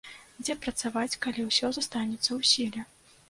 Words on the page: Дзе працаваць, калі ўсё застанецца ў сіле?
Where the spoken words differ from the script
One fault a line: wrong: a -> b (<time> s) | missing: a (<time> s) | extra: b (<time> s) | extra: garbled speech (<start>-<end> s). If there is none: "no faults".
no faults